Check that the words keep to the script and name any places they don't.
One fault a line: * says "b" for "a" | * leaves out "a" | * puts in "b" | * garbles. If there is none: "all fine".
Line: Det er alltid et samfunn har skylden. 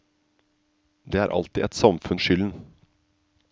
all fine